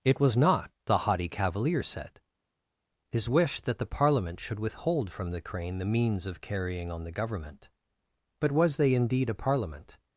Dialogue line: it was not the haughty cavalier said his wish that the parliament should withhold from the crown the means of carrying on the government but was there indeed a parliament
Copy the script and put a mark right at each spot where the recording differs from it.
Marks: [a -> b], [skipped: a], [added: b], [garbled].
it was not the haughty cavalier said his wish that the parliament should withhold from the [crown -> crane] the means of carrying on the government but was [there -> they] indeed a parliament